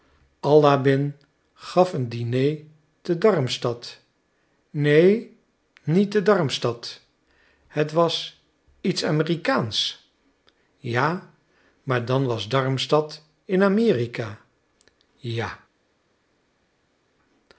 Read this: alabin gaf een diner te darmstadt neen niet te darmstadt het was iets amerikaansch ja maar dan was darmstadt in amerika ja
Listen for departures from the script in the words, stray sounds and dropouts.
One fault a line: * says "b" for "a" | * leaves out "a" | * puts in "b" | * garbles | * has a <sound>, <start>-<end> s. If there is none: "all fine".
all fine